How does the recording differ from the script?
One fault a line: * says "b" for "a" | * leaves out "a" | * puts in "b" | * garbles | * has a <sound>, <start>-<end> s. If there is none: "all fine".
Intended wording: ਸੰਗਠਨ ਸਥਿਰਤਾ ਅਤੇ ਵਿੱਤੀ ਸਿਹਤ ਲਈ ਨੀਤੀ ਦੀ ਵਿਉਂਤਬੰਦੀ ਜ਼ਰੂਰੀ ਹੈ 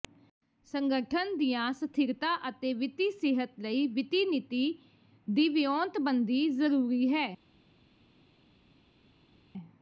* puts in "ਦੀਆਂ"
* puts in "ਵਿੱਤੀ"